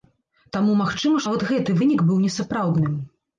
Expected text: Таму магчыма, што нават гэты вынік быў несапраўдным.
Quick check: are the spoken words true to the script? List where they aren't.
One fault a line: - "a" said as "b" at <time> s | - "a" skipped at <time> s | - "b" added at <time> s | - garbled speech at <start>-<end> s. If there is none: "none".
- "што" skipped at 1.2 s